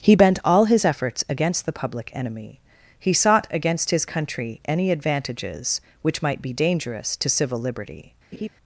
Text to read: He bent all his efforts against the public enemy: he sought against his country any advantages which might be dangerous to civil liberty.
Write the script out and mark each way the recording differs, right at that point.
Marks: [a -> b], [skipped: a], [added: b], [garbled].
He bent all his efforts against the public enemy: he sought against his country any advantages which might be dangerous to civil liberty.